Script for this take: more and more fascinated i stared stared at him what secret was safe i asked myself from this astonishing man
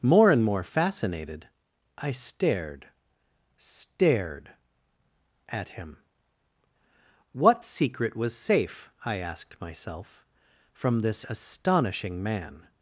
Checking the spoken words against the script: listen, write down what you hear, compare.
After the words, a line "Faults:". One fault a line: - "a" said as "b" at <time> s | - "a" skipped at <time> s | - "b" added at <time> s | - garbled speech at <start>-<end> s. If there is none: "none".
more and more fascinated i stared stared at him what secret was safe i asked myself from this astonishing man
Faults:
none